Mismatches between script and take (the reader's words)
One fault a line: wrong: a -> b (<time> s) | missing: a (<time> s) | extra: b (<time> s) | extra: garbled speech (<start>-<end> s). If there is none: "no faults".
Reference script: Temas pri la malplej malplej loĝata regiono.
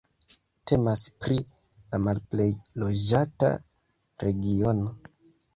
missing: malplej (2.5 s)